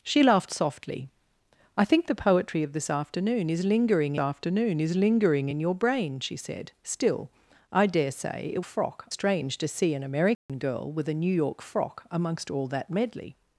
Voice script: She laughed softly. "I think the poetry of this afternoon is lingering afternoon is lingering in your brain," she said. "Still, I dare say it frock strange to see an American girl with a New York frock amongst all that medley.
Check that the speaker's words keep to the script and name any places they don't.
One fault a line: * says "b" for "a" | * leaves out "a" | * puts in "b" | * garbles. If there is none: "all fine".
all fine